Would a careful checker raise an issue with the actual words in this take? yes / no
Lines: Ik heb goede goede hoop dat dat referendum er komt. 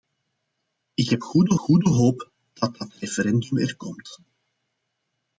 no